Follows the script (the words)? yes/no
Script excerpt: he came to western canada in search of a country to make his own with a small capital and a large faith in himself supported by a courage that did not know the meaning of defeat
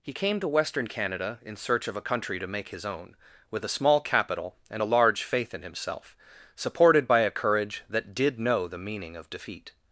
no